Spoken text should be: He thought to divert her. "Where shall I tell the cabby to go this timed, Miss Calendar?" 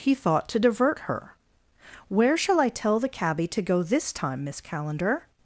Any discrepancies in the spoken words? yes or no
yes